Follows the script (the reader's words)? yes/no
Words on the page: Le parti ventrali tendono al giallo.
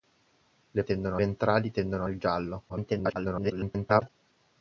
no